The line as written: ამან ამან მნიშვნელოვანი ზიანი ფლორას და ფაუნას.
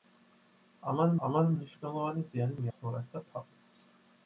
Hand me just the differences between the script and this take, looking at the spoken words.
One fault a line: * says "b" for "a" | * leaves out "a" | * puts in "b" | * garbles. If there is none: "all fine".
all fine